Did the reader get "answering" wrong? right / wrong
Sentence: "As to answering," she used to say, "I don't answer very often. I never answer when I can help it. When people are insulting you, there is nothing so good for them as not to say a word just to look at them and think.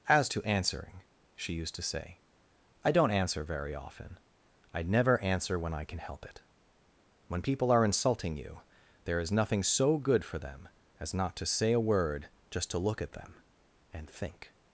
right